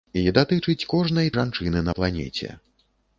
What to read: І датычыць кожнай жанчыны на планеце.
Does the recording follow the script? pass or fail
pass